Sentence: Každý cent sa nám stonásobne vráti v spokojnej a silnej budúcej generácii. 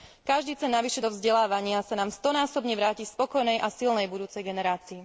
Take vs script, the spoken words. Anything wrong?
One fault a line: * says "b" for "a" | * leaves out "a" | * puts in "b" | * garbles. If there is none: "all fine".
* puts in "navyše do vzdelávania"